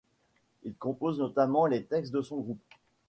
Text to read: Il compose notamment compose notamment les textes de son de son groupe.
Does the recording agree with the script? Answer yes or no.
no